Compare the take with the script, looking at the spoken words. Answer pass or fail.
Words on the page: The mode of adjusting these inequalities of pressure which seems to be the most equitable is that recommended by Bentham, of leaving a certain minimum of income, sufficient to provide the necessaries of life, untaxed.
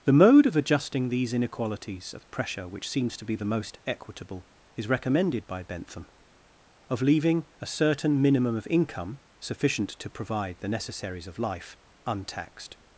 fail